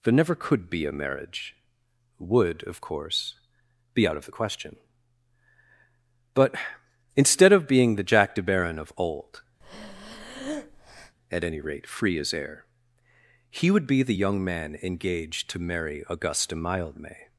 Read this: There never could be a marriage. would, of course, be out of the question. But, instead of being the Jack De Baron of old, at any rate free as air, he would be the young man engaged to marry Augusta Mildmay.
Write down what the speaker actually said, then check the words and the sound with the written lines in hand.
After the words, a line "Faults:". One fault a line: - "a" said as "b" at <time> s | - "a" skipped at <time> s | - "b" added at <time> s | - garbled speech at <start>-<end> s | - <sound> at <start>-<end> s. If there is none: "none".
There never could be a marriage. would, of course, be out of the question. But, instead of being the Jack De Baron of old, at any rate free as air, he would be the young man engaged to marry Augusta Mildmay.
Faults:
- breath at 9.6-11.2 s